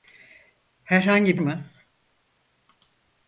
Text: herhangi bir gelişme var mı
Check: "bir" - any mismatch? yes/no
yes